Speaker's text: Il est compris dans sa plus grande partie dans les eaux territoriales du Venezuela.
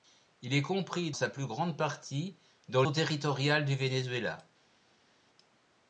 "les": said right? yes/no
no